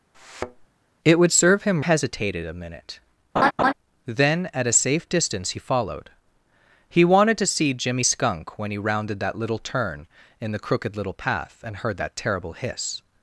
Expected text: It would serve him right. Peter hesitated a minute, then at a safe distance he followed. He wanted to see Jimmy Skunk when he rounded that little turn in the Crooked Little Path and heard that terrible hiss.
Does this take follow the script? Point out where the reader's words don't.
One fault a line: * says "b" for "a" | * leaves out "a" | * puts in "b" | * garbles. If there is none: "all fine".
* leaves out "right Peter"